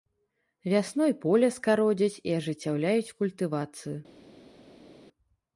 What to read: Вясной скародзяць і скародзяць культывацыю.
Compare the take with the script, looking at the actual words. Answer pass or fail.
fail